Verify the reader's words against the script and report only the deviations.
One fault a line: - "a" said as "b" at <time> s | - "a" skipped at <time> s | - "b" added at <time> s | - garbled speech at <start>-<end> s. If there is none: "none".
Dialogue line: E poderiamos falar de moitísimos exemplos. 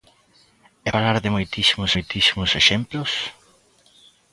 - "poderiamos" skipped at 0.9 s
- "moitísimos" added at 1.9 s